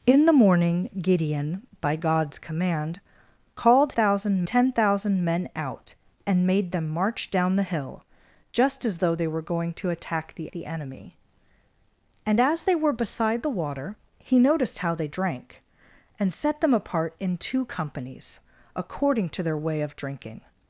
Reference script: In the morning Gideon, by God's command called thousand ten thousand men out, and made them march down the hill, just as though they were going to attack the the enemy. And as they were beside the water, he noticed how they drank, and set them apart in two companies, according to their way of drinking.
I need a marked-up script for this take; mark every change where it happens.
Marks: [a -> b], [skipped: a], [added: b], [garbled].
In the morning Gideon, by God's command called thousand ten thousand men out, and made them march down the hill, just as though they were going to attack the the enemy. And as they were beside the water, he noticed how they drank, and set them apart in two companies, according to their way of drinking.